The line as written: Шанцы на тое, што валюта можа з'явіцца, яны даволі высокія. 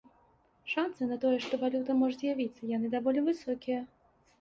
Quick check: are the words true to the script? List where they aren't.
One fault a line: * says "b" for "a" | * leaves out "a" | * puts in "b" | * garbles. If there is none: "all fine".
all fine